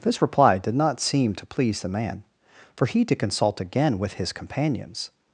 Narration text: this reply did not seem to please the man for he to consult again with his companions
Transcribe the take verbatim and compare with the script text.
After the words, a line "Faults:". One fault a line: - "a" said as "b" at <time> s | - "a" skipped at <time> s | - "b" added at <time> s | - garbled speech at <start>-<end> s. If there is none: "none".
this reply did not seem to please the man for he to consult again with his companions
Faults:
none